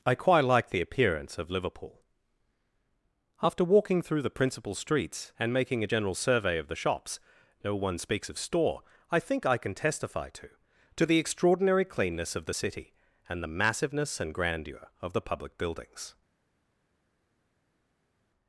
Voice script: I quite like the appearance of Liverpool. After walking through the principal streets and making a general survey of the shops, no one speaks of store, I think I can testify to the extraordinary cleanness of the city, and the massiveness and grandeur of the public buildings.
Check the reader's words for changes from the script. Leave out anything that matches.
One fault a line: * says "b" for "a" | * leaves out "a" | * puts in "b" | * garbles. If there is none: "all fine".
* puts in "to"